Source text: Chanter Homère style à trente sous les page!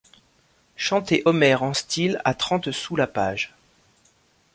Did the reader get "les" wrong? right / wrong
wrong